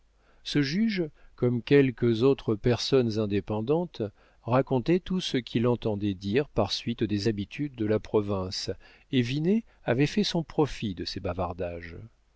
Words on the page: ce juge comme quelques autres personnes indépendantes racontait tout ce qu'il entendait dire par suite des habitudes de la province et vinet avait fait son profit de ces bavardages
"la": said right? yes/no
yes